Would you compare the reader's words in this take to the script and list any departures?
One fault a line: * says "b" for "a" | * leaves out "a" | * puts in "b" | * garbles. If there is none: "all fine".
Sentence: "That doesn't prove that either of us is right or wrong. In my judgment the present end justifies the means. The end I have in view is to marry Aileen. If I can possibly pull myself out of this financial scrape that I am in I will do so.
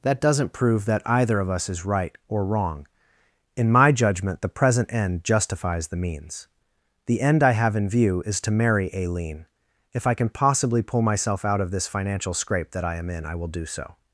all fine